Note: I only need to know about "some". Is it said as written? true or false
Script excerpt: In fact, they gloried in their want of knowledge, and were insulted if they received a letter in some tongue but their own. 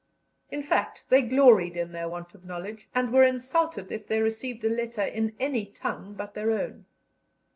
false